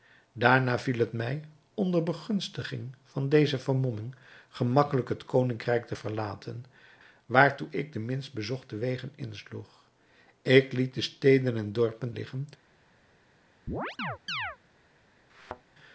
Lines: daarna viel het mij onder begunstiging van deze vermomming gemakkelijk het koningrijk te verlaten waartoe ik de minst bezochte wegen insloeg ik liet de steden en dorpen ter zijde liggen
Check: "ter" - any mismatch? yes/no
yes